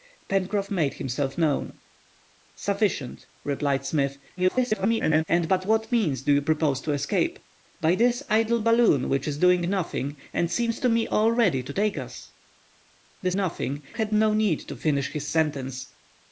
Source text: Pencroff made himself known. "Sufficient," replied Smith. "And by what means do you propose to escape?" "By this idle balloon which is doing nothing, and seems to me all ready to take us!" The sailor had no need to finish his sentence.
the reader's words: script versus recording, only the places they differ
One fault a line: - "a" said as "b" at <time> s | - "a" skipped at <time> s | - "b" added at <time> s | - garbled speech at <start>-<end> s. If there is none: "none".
- garbled speech at 4.4-5.2 s
- "sailor" said as "nothing" at 13.3 s